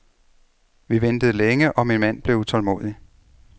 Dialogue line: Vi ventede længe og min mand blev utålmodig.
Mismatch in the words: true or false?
false